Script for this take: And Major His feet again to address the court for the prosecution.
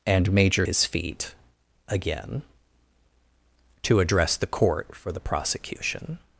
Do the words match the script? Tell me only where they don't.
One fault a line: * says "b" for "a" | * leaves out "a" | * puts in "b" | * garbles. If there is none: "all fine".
all fine